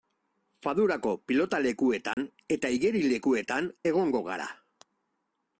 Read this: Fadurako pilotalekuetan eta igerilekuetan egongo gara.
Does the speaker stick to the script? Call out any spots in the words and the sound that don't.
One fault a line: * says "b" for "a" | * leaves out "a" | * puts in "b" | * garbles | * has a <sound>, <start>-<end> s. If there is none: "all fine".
* has a dropout, 2.1-2.2 s